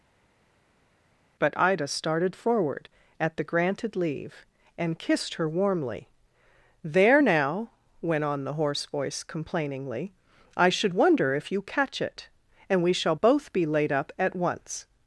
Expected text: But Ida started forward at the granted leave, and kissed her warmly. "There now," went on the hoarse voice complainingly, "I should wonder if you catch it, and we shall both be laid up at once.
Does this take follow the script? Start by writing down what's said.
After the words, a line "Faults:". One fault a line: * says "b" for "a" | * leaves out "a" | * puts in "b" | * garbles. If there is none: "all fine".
But Ida started forward at the granted leave, and kissed her warmly. "There now," went on the hoarse voice complainingly, "I should wonder if you catch it, and we shall both be laid up at once.
Faults:
all fine